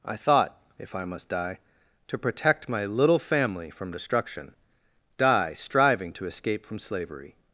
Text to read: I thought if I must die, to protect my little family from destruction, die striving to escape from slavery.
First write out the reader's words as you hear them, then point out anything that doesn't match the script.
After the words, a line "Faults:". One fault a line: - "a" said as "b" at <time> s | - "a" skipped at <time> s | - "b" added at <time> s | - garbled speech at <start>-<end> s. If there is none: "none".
I thought if I must die, to protect my little family from destruction, die striving to escape from slavery.
Faults:
none